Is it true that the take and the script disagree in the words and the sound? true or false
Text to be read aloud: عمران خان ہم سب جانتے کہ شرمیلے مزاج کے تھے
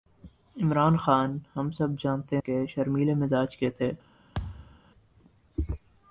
true